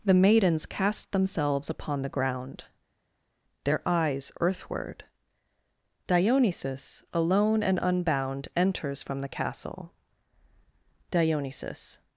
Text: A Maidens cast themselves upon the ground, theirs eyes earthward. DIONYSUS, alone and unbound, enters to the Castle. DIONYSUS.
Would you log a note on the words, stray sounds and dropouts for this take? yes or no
yes